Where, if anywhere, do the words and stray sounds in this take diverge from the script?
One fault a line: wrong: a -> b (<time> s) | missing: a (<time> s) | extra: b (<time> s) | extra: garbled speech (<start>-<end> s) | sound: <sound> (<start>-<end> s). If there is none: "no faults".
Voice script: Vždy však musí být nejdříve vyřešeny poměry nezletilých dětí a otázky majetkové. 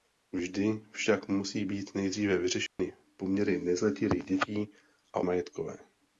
sound: dropout (2.7-2.8 s)
missing: otázky (5.2 s)